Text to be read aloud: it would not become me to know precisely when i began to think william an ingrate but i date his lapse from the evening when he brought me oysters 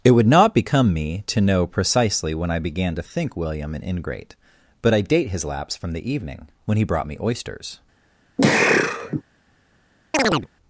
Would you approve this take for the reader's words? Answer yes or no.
yes